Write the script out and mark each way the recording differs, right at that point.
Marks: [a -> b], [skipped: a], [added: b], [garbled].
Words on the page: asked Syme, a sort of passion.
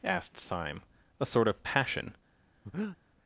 asked Syme, a sort of passion.